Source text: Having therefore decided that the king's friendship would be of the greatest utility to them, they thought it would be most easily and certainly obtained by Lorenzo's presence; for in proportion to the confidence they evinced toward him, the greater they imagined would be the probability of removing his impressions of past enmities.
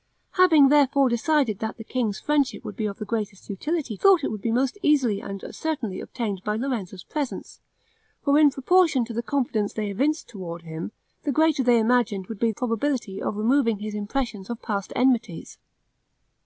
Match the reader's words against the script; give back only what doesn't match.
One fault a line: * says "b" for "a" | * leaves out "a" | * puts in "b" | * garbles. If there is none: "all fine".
* leaves out "to them they"
* leaves out "the"